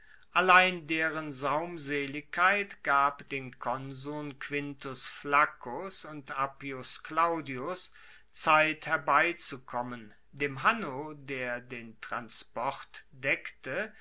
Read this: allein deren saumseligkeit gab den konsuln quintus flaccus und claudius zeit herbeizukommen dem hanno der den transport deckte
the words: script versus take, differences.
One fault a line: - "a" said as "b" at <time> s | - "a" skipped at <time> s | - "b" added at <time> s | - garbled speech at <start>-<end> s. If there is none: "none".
- "appius" added at 6.4 s